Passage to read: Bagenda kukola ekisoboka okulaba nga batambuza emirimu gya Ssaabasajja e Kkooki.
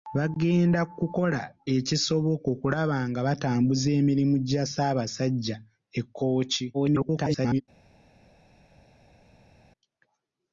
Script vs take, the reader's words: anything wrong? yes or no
yes